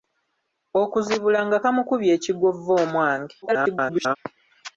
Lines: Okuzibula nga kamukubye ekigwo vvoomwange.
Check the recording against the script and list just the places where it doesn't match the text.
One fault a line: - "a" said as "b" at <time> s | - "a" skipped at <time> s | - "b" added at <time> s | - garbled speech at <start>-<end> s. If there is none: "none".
- garbled speech at 3.4-4.2 s